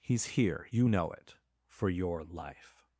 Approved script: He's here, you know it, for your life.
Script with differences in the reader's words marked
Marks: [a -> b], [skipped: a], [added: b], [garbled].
He's here, you know it, for your life.